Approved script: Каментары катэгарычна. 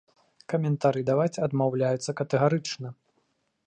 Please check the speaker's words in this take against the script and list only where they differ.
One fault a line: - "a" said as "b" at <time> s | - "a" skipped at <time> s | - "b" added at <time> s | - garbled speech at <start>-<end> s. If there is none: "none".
- "даваць адмаўляюцца" added at 1.1 s